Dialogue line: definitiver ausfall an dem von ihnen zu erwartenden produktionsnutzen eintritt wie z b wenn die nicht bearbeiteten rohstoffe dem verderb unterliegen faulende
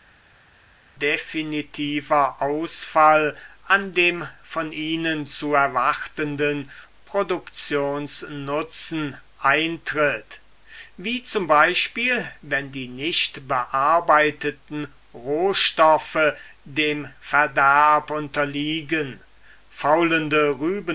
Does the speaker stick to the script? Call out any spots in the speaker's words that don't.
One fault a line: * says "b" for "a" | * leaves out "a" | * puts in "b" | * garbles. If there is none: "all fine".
all fine